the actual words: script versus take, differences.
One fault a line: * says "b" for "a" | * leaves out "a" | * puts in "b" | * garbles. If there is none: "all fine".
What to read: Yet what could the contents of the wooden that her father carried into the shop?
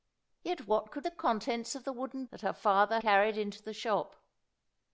all fine